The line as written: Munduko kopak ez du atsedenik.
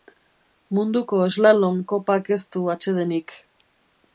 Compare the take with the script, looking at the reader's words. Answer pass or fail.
fail